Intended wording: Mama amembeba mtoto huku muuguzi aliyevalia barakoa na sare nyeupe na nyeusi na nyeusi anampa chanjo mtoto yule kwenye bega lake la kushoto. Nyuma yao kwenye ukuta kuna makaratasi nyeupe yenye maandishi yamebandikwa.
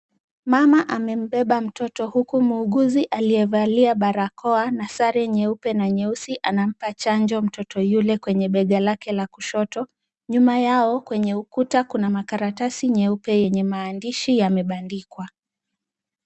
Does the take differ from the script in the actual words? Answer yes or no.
yes